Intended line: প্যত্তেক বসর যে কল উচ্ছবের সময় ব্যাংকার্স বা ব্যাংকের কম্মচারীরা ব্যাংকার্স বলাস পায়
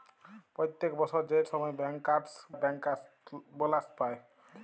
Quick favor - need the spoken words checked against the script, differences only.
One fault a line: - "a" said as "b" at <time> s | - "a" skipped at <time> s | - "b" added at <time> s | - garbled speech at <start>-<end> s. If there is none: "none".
- "কল উচ্ছবের" skipped at 1.4 s
- "বা ব্যাংকের কম্মচারীরা" skipped at 2.3 s